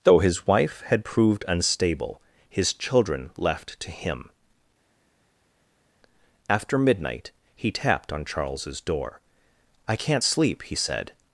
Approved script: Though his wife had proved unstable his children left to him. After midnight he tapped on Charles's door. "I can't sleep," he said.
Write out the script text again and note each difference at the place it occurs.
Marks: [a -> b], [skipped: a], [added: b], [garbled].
Though his wife had proved unstable his children left to him. After midnight he tapped on Charles's door. "I can't sleep," he said.